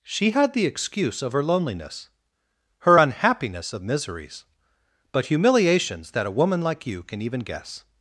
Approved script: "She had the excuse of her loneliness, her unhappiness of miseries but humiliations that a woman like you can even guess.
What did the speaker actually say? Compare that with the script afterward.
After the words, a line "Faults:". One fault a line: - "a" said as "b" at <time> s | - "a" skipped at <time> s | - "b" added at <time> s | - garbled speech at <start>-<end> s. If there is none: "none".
"She had the excuse of her loneliness, her unhappiness of miseries but humiliations that a woman like you can even guess.
Faults:
none